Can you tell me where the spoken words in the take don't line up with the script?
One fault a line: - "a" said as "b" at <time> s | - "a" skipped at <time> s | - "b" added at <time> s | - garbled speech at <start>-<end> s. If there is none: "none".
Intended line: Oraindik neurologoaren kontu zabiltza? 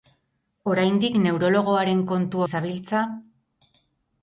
none